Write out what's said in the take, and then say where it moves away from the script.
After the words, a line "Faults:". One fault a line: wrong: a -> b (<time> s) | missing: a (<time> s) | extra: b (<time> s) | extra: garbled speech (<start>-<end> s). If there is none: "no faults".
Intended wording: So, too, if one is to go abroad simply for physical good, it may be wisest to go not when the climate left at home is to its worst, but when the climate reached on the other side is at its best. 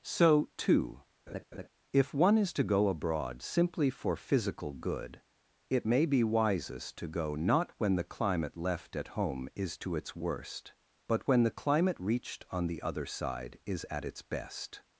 So, too, if one is to go abroad simply for physical good, it may be wisest to go not when the climate left at home is to its worst, but when the climate reached on the other side is at its best.
Faults:
no faults